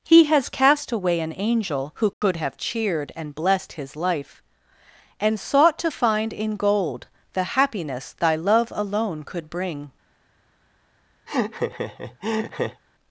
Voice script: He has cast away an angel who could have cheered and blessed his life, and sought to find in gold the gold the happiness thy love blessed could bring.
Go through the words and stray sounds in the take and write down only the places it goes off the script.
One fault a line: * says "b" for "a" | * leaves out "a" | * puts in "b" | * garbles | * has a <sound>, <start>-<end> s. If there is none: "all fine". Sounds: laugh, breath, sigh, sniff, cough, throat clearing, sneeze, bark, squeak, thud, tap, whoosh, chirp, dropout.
* has a dropout, 2.1-2.2 s
* leaves out "gold the"
* says "alone" for "blessed"
* has a laugh, 11.3-12.8 s